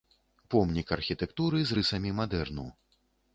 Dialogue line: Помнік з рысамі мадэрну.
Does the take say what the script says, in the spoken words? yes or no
no